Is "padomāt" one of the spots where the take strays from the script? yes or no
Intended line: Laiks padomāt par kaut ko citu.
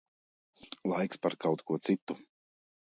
yes